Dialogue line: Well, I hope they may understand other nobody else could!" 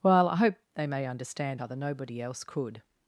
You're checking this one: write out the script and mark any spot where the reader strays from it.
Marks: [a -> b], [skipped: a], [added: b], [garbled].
Well, I hope they may understand other nobody else could!"